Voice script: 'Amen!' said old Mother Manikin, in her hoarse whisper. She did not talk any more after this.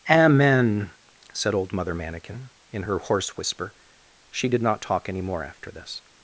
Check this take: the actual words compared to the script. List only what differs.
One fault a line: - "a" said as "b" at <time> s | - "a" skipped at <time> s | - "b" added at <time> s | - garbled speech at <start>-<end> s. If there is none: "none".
none